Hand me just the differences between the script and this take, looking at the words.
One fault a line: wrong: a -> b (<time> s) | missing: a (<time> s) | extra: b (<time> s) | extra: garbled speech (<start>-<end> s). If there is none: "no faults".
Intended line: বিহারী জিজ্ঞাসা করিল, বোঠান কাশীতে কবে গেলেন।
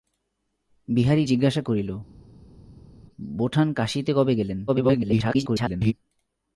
extra: garbled speech (4.7-5.9 s)